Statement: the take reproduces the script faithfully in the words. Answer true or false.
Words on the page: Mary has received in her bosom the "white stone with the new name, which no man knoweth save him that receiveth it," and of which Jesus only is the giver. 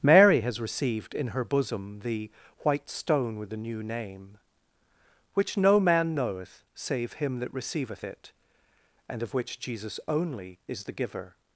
true